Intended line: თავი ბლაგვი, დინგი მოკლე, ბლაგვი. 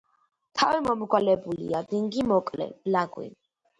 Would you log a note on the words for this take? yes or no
yes